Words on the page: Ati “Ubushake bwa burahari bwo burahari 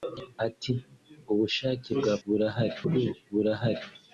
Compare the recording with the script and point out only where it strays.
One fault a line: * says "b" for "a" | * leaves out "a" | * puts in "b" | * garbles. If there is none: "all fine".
all fine